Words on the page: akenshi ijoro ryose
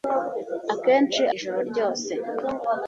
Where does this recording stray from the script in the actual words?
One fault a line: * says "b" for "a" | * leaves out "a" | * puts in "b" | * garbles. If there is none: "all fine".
all fine